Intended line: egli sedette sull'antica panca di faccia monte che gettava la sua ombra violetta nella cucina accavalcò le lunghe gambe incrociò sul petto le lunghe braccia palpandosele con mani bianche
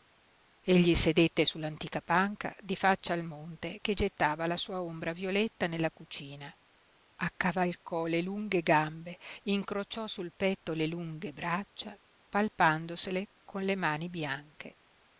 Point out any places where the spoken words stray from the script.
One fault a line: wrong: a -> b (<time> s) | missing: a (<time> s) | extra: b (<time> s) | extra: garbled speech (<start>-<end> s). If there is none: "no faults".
extra: al (3.1 s)
extra: le (13.6 s)